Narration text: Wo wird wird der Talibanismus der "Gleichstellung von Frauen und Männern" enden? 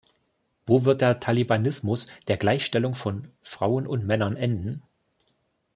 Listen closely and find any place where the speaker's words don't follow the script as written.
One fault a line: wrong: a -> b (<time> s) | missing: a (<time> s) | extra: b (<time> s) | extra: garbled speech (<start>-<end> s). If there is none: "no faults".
missing: wird (1.0 s)